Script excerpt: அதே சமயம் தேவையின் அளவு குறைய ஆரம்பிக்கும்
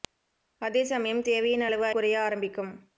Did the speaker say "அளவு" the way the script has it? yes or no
yes